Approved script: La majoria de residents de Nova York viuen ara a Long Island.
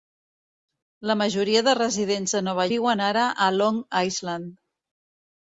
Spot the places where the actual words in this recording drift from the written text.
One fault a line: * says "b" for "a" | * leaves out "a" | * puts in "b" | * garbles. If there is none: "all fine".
* leaves out "York"